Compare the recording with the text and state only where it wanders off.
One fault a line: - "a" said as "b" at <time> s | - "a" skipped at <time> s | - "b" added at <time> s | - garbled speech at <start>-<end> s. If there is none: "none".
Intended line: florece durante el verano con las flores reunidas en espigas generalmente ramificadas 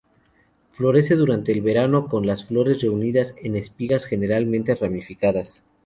none